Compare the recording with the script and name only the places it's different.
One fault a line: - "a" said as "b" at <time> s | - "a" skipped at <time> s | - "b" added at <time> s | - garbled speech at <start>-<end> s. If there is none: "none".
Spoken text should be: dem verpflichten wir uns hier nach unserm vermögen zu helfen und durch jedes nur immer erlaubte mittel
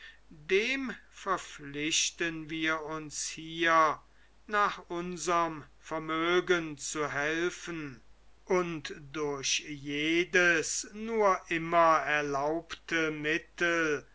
none